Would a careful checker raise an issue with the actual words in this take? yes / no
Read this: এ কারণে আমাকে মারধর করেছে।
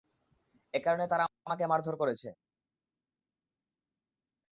yes